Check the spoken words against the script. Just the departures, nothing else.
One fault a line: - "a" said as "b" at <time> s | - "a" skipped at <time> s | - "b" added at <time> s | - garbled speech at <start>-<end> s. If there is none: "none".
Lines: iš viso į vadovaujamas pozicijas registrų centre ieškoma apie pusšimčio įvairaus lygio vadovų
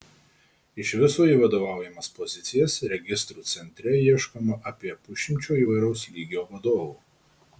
none